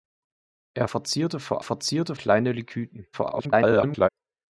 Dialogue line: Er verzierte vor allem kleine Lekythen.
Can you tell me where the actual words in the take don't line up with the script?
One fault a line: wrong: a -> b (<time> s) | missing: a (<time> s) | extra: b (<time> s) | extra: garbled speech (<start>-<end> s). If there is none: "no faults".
wrong: allem -> verzierte (1.6 s)
extra: garbled speech (3.1-4.1 s)